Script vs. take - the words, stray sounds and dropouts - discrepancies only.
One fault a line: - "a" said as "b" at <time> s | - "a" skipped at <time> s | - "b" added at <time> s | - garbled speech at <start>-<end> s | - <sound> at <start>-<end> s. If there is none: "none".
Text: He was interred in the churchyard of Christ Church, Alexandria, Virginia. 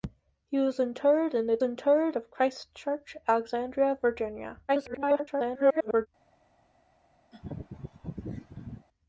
- "churchyard" said as "interred" at 1.6 s
- garbled speech at 4.7-6.1 s
- laugh at 7.3-8.9 s